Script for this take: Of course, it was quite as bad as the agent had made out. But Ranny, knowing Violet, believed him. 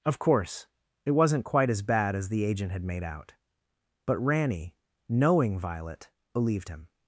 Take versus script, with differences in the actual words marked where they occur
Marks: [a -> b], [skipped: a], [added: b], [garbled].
Of course, it [was -> wasn't] quite as bad as the agent had made out. But Ranny, knowing Violet, believed him.